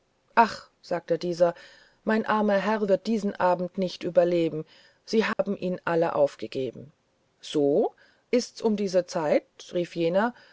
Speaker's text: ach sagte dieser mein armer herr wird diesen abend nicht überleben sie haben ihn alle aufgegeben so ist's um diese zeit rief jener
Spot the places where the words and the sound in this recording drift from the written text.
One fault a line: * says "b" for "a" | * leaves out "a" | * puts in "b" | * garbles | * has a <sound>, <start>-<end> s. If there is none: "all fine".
* has a dropout, 5.3-5.4 s